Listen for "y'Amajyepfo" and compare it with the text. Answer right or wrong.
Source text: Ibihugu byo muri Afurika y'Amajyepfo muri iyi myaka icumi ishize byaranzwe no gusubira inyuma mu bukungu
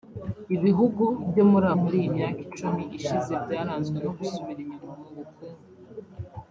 wrong